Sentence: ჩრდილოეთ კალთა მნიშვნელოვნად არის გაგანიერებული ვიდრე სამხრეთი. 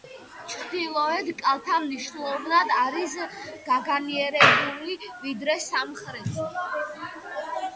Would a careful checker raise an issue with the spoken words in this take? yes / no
no